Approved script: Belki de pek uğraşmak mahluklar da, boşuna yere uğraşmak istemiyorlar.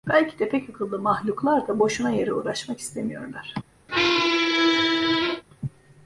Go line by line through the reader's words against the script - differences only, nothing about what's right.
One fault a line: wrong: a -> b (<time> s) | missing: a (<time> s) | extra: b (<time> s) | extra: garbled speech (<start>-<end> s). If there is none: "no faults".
wrong: uğraşmak -> akıllı (0.7 s)